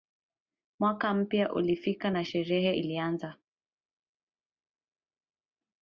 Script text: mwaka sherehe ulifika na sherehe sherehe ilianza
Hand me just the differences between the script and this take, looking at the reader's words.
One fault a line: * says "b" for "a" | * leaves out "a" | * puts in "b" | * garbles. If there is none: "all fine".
* says "mpya" for "sherehe"
* leaves out "sherehe"